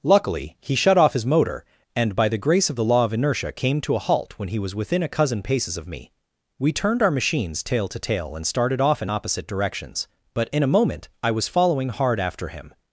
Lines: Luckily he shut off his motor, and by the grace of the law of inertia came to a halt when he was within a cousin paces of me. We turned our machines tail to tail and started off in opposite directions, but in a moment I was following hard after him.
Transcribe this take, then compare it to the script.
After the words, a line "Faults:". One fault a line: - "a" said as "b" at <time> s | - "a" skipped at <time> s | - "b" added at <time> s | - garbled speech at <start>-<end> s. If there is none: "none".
Luckily he shut off his motor, and by the grace of the law of inertia came to a halt when he was within a cousin paces of me. We turned our machines tail to tail and started off in opposite directions, but in a moment I was following hard after him.
Faults:
none